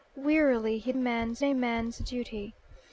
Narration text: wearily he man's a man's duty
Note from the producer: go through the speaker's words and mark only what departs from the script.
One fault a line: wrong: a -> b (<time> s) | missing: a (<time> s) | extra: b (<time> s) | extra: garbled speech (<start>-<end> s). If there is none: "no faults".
no faults